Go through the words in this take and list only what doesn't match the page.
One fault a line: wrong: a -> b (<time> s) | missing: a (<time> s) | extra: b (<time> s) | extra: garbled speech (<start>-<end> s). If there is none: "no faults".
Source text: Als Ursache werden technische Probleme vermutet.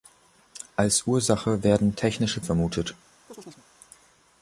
missing: Probleme (2.4 s)